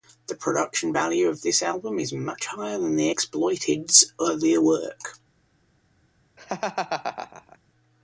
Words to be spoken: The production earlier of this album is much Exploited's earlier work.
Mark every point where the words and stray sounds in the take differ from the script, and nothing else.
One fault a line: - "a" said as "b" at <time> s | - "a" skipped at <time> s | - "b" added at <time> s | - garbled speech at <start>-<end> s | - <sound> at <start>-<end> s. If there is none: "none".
- "earlier" said as "value" at 0.9 s
- "higher than The" added at 2.5 s
- laugh at 6.4-7.6 s